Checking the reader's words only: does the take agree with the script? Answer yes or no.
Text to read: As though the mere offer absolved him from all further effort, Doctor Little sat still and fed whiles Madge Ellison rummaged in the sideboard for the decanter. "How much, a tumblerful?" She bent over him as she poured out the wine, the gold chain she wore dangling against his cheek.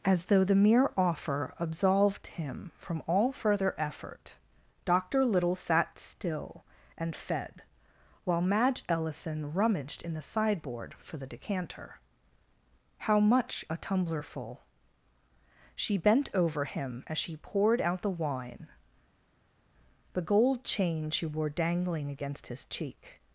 no